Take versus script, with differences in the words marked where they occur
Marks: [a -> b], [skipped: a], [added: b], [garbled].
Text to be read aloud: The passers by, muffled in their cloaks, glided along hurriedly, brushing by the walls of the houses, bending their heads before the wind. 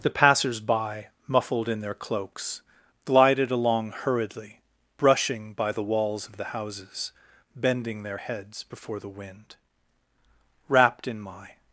The passers by, muffled in their cloaks, glided along hurriedly, brushing by the walls of the houses, bending their heads before the wind. [added: Wrapped in my]